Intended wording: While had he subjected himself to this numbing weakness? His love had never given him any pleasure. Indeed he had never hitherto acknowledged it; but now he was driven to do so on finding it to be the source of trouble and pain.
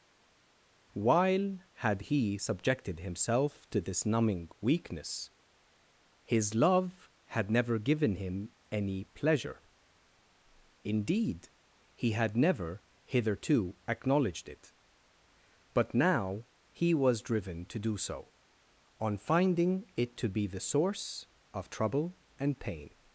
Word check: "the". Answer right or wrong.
right